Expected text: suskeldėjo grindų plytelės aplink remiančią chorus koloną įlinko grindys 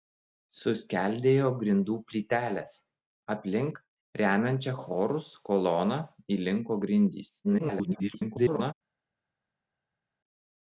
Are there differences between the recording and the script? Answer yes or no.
yes